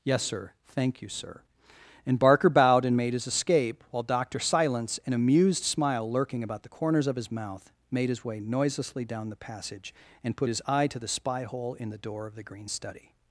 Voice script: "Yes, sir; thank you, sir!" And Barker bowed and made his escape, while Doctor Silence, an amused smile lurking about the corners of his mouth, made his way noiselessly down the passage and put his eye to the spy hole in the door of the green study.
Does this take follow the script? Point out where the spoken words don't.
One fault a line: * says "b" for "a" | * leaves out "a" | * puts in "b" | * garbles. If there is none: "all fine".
all fine